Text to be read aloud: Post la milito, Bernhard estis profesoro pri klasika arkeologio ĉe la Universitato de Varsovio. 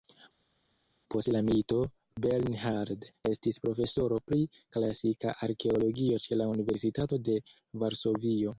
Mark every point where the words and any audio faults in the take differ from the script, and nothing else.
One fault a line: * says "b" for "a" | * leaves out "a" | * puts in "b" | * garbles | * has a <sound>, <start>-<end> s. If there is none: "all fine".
all fine